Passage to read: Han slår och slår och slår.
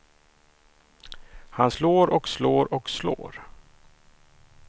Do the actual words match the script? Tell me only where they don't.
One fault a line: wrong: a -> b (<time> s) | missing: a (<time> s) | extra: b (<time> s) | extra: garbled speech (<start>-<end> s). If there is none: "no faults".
no faults